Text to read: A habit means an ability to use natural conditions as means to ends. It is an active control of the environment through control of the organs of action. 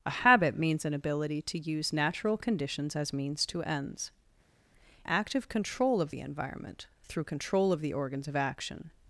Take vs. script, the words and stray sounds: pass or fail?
fail